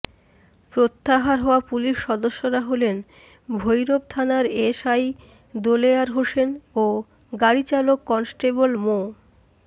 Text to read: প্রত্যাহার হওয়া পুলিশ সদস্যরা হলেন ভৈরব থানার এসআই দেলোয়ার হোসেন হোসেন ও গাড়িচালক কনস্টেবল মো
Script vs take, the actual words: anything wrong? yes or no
yes